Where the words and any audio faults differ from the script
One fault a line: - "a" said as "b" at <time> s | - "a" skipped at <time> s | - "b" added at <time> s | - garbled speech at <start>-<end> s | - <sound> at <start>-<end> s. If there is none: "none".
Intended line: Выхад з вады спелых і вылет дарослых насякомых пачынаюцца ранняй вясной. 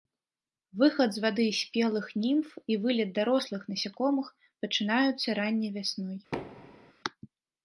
- "німф" added at 2.2 s
- thud at 6.3-6.9 s